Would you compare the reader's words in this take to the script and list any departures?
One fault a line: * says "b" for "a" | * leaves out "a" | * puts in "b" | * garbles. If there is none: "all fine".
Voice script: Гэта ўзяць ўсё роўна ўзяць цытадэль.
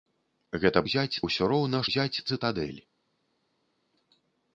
all fine